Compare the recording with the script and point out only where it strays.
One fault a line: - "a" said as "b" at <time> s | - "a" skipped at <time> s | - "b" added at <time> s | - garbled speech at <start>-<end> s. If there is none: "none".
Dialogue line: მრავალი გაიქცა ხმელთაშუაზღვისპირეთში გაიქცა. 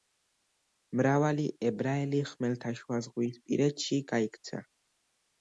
- "გაიქცა" said as "ებრაელი" at 1.7 s